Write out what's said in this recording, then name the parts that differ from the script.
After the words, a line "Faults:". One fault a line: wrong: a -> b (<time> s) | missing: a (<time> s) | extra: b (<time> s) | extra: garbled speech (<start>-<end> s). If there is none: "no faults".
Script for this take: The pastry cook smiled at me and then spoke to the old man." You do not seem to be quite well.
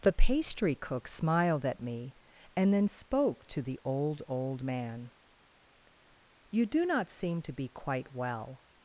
The pastry cook smiled at me and then spoke to the old old man." You do not seem to be quite well.
Faults:
extra: old (4.3 s)